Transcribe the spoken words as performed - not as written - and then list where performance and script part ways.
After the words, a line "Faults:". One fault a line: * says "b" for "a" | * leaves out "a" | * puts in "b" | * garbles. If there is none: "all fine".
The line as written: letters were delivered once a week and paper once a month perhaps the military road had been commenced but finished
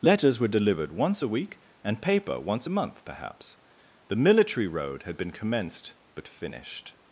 letters were delivered once a week and paper once a month perhaps the military road had been commenced but finished
Faults:
all fine